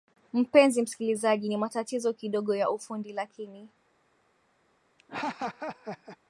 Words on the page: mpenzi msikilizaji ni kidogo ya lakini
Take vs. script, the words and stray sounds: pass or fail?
fail